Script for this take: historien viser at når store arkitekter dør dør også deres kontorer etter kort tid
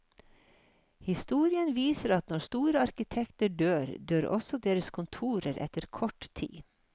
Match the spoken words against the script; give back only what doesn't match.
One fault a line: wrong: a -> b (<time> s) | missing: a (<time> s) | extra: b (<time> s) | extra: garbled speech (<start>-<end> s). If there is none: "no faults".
no faults